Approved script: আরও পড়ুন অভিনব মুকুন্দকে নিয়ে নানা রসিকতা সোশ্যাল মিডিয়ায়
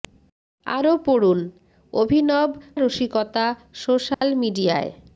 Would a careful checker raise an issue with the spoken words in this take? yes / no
yes